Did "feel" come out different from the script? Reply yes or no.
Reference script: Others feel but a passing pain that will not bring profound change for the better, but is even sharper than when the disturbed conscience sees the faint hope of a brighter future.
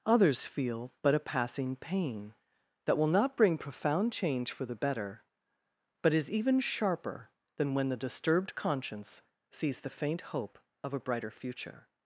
no